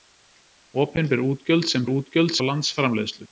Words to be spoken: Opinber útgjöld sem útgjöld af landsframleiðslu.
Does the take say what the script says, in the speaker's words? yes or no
yes